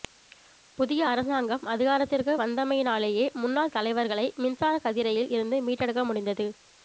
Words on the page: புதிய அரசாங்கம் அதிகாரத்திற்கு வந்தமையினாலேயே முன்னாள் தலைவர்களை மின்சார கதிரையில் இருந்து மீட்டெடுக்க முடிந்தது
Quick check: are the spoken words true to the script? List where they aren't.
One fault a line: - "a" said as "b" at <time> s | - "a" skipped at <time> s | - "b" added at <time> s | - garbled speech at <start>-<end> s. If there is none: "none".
none